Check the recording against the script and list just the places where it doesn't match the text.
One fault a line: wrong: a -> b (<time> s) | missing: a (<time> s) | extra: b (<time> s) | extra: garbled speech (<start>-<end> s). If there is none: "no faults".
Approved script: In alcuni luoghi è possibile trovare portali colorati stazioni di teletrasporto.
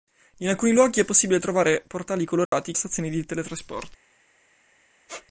no faults